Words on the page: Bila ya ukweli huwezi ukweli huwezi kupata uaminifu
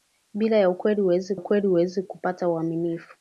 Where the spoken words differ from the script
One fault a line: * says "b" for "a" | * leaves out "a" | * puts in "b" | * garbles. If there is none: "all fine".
all fine